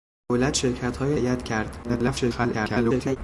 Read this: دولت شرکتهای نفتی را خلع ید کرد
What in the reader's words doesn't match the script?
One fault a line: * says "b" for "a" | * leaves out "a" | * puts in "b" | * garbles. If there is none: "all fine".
* leaves out "نفتی را خلع"
* garbles